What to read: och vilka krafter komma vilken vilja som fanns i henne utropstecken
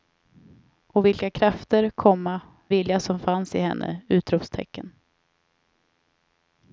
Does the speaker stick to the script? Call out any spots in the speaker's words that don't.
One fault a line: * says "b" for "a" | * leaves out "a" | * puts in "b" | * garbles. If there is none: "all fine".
* leaves out "vilken"